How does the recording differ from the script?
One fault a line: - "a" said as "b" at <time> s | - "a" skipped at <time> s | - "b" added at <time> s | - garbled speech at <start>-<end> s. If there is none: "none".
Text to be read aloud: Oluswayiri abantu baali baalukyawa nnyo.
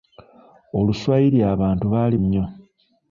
- "baalukyawa" skipped at 2.1 s